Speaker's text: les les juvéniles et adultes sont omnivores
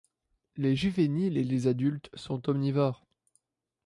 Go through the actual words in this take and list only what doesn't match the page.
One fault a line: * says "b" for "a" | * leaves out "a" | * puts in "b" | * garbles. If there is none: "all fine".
* leaves out "les"
* puts in "les"